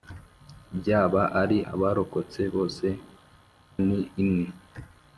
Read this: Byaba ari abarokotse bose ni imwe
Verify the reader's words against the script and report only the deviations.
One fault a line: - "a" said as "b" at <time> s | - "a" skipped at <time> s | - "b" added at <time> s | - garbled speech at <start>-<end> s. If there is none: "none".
none